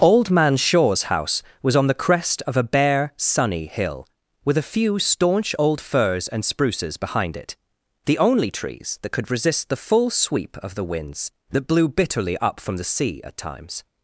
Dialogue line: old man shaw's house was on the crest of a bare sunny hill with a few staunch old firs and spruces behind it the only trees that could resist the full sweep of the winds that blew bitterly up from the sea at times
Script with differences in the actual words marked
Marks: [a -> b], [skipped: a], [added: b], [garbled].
old man shaw's house was on the crest of a bare sunny hill with a few staunch old firs and spruces behind it the only trees that could resist the full sweep of the winds that blew bitterly up from the sea at times